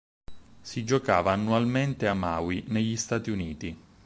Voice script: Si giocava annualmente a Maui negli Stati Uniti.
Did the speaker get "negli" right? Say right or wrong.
right